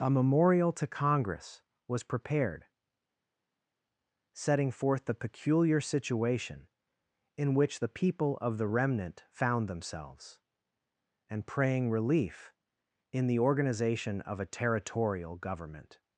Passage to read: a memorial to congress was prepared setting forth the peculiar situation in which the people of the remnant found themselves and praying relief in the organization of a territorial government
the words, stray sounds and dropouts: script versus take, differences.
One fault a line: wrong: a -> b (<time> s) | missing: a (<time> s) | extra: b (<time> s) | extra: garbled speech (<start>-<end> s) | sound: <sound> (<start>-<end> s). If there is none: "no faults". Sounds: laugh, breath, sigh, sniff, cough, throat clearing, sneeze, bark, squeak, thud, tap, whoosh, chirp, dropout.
no faults